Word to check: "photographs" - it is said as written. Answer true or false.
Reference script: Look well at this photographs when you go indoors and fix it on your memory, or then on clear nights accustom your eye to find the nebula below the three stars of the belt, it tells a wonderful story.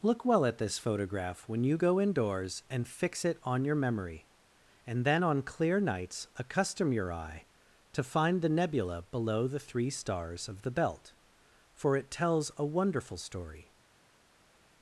false